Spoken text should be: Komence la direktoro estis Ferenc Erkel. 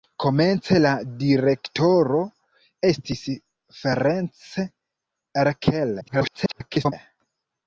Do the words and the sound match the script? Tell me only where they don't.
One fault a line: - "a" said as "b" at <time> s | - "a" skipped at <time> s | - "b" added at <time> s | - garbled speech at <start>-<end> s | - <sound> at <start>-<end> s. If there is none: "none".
- garbled speech at 6.0-6.9 s